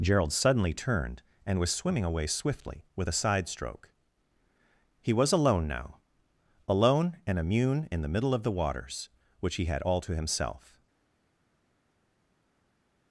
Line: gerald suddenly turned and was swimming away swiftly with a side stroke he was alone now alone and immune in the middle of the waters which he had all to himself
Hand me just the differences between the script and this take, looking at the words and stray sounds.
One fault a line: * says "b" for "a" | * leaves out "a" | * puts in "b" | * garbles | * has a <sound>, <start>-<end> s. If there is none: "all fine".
all fine